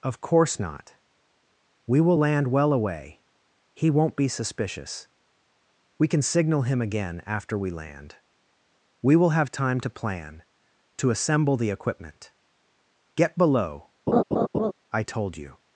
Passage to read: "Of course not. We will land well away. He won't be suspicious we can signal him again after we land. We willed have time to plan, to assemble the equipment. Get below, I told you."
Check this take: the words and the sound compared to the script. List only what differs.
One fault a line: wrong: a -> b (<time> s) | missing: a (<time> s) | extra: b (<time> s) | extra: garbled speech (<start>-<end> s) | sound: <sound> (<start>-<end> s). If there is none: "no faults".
wrong: willed -> will (9.2 s)
sound: laugh (14.1-14.7 s)